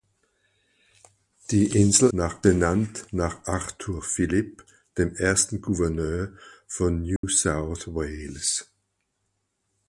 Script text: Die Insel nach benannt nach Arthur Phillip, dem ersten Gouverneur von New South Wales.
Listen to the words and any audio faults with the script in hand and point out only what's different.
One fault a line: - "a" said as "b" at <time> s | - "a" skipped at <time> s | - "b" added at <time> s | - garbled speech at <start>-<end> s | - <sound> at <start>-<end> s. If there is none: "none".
- dropout at 7.2-7.2 s